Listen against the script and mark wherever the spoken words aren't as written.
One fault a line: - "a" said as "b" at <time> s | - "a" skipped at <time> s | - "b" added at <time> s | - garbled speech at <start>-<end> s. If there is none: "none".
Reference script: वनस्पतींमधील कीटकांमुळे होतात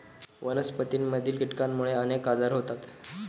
- "अनेक आजार" added at 1.9 s